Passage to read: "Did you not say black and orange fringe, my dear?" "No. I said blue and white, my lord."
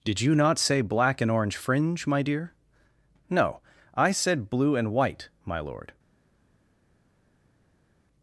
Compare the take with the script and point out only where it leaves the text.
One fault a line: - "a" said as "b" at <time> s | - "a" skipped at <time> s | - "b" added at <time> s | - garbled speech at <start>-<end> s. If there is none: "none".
none